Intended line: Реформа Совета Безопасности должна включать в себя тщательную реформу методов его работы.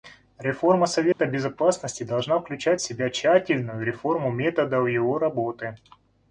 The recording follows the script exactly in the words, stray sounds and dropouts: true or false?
false